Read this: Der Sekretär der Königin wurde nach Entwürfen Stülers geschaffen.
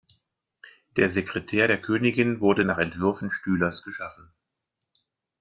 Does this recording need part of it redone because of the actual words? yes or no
no